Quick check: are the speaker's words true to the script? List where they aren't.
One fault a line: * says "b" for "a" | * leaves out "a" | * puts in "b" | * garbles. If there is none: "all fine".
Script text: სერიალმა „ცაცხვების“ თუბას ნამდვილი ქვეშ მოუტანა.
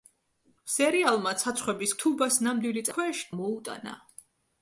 all fine